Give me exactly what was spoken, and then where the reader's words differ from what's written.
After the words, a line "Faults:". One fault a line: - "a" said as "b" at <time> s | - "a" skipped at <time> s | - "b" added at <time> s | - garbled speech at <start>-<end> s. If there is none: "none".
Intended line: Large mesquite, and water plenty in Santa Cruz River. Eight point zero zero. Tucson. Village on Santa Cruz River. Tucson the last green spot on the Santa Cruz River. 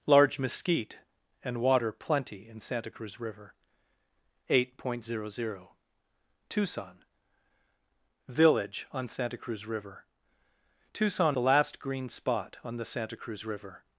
Large mesquite, and water plenty in Santa Cruz River. Eight point zero zero. Tucson. Village on Santa Cruz River. Tucson the last green spot on the Santa Cruz River.
Faults:
none